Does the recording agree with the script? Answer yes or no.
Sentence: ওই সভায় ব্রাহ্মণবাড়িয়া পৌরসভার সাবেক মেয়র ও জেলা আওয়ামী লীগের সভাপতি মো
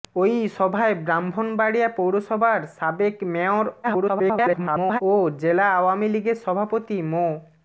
no